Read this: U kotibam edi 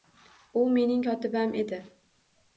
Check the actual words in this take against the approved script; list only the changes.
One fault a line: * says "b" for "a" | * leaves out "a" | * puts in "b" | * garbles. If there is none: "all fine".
* puts in "mening"